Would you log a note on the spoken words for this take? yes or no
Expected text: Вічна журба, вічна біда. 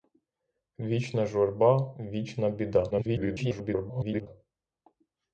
yes